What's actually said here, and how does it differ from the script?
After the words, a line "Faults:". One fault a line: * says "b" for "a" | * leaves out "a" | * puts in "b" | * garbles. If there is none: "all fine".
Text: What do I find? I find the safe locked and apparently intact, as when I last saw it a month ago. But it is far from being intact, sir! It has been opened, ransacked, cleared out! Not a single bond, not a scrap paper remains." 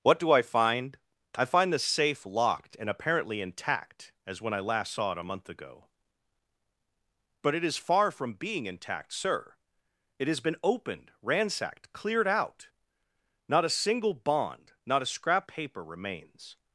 What do I find? I find the safe locked and apparently intact, as when I last saw it a month ago. But it is far from being intact, sir! It has been opened, ransacked, cleared out! Not a single bond, not a scrap paper remains."
Faults:
all fine